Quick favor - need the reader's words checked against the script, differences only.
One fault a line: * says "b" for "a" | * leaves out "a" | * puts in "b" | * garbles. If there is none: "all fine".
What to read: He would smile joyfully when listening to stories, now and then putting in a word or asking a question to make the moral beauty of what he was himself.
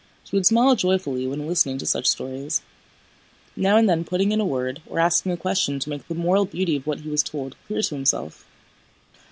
* puts in "such"
* puts in "told clear to"